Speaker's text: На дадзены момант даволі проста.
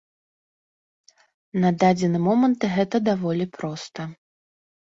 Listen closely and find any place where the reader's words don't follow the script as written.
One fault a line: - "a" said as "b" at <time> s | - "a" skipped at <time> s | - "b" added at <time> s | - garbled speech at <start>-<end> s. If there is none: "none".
- "гэта" added at 2.8 s